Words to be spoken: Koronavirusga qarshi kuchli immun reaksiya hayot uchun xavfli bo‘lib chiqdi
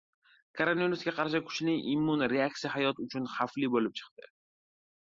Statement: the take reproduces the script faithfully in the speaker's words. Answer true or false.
true